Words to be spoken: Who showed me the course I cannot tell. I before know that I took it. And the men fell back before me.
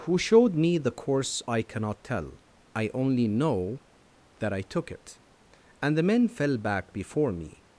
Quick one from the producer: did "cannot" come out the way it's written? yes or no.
yes